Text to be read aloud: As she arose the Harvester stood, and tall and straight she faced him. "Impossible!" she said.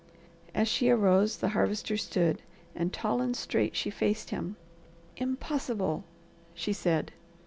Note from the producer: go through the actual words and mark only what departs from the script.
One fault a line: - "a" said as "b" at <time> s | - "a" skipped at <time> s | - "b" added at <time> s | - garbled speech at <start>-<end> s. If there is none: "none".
none